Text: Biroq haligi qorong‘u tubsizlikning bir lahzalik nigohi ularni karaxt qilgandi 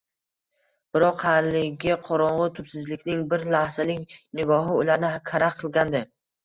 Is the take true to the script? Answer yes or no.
yes